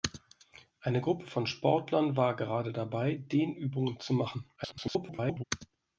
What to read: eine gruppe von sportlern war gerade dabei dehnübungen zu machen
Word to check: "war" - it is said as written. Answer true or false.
true